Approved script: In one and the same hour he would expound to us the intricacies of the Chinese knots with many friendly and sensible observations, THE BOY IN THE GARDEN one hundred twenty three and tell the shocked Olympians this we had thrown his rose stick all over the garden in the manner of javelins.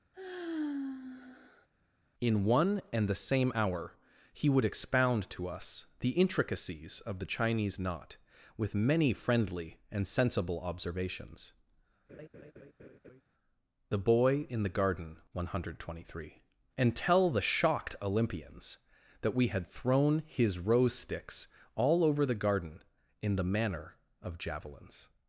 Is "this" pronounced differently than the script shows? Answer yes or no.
yes